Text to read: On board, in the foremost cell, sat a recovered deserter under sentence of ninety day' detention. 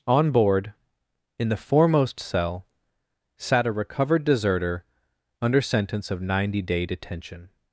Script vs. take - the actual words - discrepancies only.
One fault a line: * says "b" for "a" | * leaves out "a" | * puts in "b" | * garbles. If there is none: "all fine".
all fine